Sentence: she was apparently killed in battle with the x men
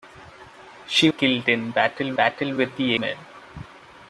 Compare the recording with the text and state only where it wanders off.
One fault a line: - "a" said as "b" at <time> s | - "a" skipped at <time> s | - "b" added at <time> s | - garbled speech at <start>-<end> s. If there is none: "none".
- "was apparently" skipped at 1.1 s
- "battle" added at 2.1 s
- "x" skipped at 2.9 s